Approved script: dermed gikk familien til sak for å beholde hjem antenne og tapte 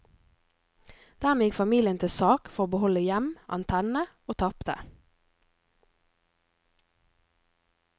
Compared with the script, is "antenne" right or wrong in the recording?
right